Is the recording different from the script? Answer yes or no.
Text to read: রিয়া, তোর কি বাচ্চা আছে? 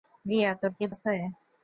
yes